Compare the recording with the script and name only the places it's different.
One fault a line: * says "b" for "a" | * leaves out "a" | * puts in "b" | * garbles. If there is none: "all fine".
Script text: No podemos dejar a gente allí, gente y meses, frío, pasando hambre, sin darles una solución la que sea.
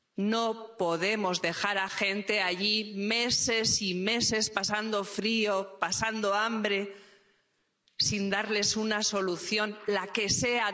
* says "meses" for "gente"
* puts in "pasando"